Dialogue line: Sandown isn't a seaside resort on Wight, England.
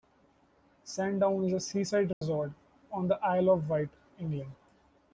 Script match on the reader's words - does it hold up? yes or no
no